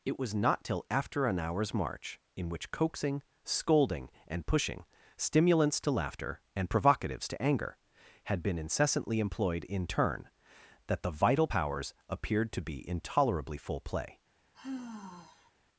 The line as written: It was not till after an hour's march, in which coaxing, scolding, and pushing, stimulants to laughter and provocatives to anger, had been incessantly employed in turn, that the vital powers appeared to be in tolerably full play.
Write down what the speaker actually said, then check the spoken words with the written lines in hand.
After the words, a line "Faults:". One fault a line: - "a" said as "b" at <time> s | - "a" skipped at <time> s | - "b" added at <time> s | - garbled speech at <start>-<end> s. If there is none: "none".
It was not till after an hour's march, in which coaxing, scolding, and pushing, stimulants to laughter and provocatives to anger, had been incessantly employed in turn, that the vital powers appeared to be in tolerably full play.
Faults:
none